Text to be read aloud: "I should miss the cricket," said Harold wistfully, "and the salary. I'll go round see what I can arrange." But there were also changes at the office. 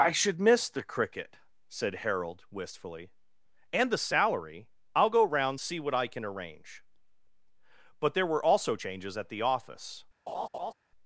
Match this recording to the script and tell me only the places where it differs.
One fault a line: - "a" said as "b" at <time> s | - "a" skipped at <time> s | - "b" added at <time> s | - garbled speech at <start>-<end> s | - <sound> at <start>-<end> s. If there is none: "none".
- laugh at 10.3-10.7 s